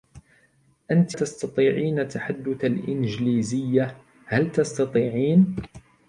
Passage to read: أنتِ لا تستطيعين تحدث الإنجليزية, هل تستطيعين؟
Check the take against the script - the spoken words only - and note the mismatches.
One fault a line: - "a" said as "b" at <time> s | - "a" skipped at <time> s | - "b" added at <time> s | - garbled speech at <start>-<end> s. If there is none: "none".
- "لا" skipped at 1.2 s